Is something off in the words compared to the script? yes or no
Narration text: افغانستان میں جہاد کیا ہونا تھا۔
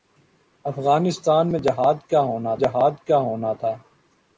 yes